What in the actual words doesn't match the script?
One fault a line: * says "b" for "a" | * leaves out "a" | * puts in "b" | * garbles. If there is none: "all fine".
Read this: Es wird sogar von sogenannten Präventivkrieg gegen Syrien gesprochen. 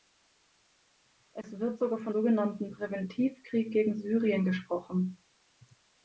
all fine